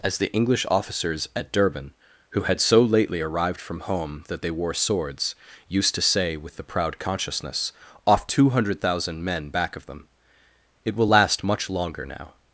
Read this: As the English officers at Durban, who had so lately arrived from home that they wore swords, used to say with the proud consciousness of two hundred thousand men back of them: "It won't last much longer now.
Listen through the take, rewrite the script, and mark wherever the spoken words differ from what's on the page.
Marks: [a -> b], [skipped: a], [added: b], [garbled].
As the English officers at Durban, who had so lately arrived from home that they wore swords, used to say with the proud consciousness [of -> off] two hundred thousand men back of them: "It [won't -> will] last much longer now.